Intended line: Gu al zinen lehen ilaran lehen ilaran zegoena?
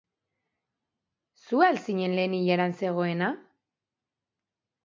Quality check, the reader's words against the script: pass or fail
fail